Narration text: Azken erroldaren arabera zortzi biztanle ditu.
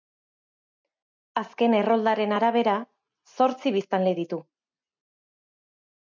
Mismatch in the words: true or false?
false